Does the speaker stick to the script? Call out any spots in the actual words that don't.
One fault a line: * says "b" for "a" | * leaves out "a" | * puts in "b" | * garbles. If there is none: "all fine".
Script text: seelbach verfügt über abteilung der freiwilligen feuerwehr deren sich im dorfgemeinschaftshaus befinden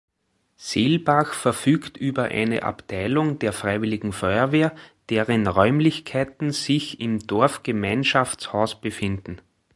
* puts in "eine"
* puts in "räumlichkeiten"